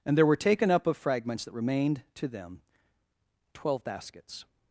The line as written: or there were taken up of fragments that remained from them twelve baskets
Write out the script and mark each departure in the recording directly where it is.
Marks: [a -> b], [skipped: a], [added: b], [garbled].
[or -> and] there were taken up of fragments that remained [from -> to] them twelve baskets